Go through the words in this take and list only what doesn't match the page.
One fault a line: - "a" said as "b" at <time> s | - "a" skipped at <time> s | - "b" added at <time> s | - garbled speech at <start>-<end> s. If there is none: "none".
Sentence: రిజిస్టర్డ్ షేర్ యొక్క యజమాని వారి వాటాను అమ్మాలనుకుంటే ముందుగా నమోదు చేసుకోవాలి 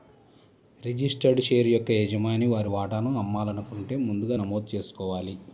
none